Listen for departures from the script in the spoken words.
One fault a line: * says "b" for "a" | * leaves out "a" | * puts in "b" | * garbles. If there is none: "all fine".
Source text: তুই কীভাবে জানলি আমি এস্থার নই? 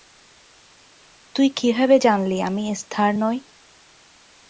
all fine